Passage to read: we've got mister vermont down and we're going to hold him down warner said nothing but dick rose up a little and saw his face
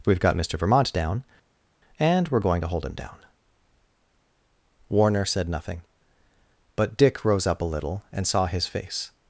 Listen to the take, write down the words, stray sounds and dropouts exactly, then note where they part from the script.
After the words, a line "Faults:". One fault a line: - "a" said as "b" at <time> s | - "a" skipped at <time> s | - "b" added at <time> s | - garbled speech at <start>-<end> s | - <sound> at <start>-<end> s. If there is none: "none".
we've got mister vermont down and we're going to hold him down warner said nothing but dick rose up a little and saw his face
Faults:
none